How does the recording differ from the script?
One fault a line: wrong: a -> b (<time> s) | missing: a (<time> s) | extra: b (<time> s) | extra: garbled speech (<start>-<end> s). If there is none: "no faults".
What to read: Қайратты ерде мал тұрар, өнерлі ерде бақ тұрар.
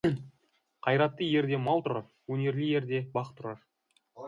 no faults